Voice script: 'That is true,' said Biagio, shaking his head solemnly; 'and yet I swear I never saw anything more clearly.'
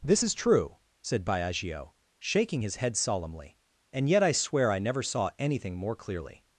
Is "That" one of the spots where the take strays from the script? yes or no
yes